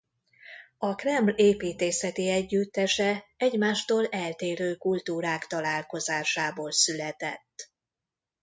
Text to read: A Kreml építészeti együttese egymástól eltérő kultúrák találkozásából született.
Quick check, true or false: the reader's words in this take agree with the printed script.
true